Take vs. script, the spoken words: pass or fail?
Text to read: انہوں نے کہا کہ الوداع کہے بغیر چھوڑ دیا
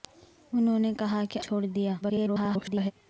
fail